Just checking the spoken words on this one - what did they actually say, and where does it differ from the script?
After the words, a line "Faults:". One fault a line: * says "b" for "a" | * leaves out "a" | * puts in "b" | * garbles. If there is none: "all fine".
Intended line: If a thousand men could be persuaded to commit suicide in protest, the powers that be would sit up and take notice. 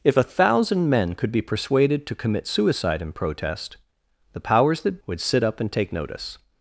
If a thousand men could be persuaded to commit suicide in protest, the powers that would sit up and take notice.
Faults:
* leaves out "be"